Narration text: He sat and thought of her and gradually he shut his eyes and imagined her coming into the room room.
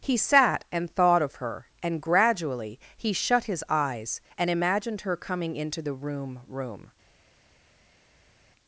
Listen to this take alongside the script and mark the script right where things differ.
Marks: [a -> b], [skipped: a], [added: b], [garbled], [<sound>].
He sat and thought of her and gradually he shut his eyes and imagined her coming into the room room.